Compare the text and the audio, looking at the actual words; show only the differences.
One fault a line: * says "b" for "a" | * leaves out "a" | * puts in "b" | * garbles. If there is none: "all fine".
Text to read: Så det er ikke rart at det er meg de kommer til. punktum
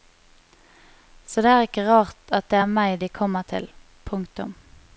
all fine